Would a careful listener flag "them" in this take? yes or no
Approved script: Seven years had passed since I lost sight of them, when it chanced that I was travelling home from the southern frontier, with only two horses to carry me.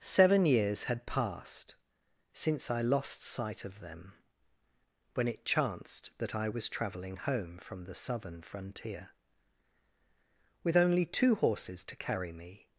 no